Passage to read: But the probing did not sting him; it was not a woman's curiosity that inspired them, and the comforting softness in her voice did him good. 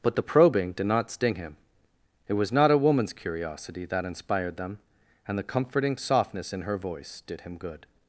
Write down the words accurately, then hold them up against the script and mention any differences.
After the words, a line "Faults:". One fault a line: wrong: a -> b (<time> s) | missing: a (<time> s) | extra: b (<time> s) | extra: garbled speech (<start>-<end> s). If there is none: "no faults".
But the probing did not sting him; it was not a woman's curiosity that inspired them, and the comforting softness in her voice did him good.
Faults:
no faults